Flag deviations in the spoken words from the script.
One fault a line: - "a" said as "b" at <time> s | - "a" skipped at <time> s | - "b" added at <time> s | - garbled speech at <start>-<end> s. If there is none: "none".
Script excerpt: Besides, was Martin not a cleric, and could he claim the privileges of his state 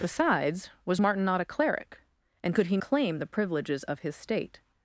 none